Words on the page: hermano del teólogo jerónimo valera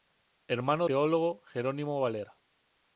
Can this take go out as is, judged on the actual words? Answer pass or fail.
fail